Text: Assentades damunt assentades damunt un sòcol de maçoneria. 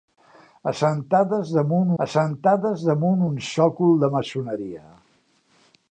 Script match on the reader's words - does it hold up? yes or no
yes